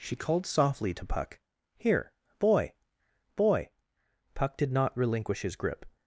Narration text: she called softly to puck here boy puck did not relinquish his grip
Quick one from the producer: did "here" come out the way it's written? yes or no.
yes